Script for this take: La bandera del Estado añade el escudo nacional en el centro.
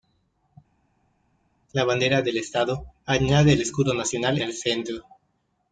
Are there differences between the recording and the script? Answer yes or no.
yes